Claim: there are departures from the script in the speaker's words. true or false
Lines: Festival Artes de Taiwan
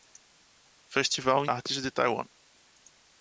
false